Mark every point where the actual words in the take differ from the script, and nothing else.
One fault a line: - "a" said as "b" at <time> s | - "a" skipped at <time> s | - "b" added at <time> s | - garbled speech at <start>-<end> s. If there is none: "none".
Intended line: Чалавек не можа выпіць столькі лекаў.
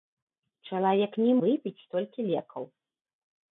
- "можа" skipped at 1.3 s